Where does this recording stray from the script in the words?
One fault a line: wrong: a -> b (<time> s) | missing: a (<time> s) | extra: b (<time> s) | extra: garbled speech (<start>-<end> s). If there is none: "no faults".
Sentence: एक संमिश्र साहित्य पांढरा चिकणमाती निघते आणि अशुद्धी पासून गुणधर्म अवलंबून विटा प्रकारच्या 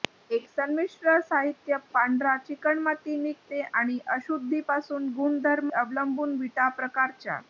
no faults